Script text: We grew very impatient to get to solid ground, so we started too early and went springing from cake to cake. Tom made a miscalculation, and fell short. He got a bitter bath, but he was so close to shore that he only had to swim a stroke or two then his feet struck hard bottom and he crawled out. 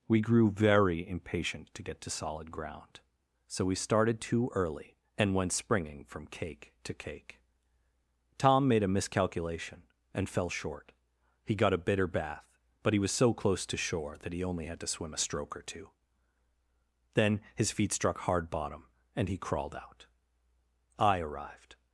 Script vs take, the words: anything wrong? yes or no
yes